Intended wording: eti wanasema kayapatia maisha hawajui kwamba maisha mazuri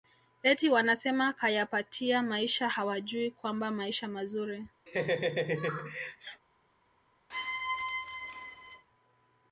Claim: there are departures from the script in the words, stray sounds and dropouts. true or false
true